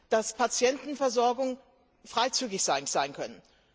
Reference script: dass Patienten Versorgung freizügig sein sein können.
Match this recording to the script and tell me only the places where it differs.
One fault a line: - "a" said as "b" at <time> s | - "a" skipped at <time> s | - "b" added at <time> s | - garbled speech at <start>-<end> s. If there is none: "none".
none